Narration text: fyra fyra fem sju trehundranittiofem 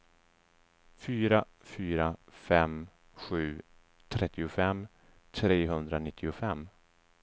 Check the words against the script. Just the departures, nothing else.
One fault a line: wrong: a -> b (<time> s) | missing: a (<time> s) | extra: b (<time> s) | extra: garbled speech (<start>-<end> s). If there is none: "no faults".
extra: trettiofem (4.1 s)